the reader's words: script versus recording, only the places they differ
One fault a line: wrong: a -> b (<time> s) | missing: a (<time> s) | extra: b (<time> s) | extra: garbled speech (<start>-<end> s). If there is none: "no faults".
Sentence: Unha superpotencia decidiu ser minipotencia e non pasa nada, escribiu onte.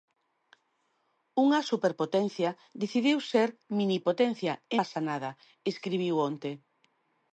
missing: non (4.8 s)